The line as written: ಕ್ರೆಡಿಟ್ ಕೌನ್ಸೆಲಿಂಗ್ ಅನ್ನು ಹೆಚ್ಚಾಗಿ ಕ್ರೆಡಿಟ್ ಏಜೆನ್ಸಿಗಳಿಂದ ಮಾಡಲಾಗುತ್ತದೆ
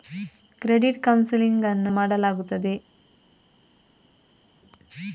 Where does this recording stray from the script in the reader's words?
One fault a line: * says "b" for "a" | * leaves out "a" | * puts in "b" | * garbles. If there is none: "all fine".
* leaves out "ಹೆಚ್ಚಾಗಿ ಕ್ರೆಡಿಟ್ ಏಜೆನ್ಸಿಗಳಿಂದ"